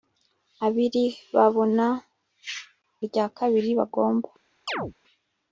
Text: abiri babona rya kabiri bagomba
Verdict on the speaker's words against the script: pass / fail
pass